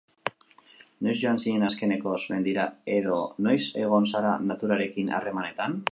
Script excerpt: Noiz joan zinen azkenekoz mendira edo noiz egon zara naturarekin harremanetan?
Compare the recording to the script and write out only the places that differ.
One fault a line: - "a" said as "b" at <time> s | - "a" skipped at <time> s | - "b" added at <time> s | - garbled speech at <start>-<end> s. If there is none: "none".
none